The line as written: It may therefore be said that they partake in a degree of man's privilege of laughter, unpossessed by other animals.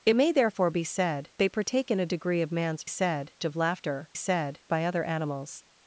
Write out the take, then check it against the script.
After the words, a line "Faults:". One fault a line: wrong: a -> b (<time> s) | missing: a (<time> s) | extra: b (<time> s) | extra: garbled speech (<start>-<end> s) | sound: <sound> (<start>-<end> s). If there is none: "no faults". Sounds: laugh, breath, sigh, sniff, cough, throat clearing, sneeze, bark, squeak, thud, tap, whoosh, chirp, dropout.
It may therefore be said they partake in a degree of man's said of laughter, said by other animals.
Faults:
missing: that (1.3 s)
wrong: privilege -> said (2.9 s)
wrong: unpossessed -> said (4.1 s)